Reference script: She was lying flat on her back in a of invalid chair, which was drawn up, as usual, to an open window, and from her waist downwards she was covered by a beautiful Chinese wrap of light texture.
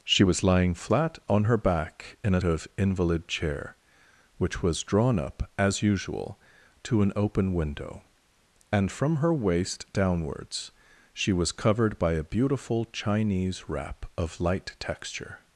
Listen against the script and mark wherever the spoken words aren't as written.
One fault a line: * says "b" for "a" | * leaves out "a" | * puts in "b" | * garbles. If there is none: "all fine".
all fine